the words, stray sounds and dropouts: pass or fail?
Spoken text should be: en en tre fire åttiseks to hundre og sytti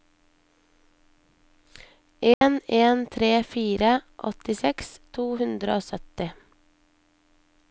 fail